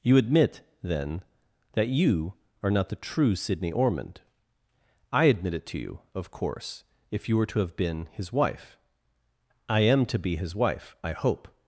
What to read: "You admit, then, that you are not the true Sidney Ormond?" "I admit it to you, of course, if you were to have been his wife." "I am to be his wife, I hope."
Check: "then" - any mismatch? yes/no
no